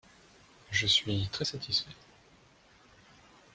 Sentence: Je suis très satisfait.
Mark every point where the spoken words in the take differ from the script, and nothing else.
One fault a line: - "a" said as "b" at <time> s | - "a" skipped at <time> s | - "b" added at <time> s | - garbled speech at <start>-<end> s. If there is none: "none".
none